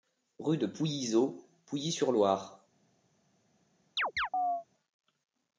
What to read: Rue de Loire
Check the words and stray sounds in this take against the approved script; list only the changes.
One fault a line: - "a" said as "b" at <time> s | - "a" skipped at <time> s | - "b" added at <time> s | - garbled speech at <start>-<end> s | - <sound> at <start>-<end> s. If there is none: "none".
- "Pouillyzot Pouilly sur" added at 0.7 s
- chirp at 4.0-4.6 s